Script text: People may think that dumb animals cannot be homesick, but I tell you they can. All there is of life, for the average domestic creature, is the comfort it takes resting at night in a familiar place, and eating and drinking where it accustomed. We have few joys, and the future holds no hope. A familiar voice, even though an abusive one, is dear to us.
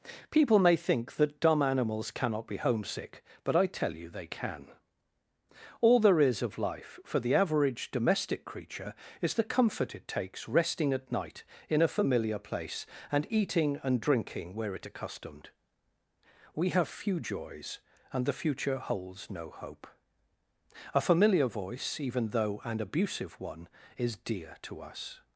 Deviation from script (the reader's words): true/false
false